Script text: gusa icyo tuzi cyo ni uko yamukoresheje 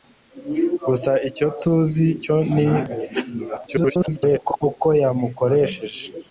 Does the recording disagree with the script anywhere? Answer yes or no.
yes